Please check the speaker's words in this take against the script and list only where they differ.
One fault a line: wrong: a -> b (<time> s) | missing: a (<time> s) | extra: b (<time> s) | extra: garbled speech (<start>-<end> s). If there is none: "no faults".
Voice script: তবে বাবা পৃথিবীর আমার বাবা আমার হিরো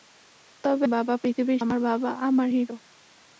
no faults